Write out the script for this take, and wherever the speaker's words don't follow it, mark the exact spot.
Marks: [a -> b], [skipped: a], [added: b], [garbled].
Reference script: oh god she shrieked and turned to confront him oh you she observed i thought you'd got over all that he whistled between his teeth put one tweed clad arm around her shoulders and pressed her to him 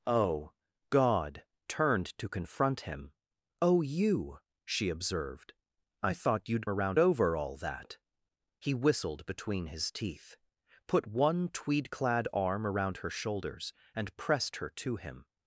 oh god [skipped: she shrieked and] turned to confront him oh you she observed i thought you'd [got -> around] over all that he whistled between his teeth put one tweed clad arm around her shoulders and pressed her to him